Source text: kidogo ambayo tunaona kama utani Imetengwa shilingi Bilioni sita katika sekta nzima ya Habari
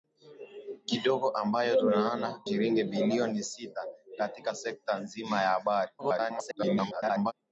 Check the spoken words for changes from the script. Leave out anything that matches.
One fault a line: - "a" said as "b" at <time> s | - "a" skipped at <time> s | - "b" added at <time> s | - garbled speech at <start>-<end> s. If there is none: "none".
- "kama utani Imetengwa" skipped at 2.4 s
- garbled speech at 6.0-7.3 s